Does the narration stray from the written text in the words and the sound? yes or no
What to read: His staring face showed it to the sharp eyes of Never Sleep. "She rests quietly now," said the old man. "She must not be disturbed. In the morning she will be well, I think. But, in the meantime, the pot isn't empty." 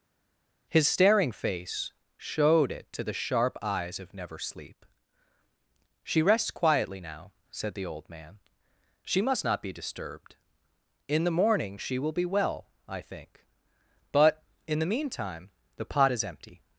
yes